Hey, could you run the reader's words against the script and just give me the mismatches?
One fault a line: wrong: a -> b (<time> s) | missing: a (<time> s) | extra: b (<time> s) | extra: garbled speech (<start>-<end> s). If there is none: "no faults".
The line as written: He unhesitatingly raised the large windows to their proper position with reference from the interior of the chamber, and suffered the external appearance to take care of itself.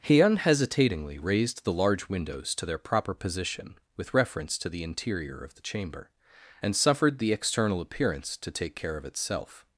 wrong: from -> to (4.6 s)